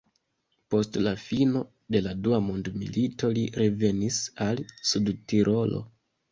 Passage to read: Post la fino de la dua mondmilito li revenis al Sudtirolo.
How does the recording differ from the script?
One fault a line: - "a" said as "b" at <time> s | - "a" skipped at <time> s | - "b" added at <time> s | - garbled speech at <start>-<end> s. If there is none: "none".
none